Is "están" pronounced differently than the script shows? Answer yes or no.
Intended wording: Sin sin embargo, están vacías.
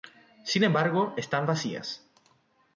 no